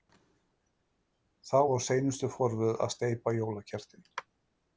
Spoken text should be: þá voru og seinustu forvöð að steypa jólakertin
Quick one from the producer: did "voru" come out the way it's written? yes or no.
no